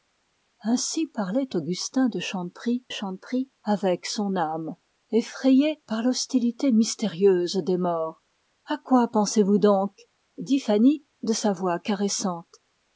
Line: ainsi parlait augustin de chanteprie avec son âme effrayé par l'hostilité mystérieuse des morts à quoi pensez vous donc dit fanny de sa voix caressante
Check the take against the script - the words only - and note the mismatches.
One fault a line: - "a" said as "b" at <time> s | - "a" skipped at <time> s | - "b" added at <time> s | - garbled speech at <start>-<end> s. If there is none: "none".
- "chanteprie" added at 2.9 s